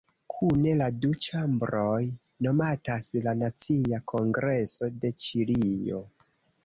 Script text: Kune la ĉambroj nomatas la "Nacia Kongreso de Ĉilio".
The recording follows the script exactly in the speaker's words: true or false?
false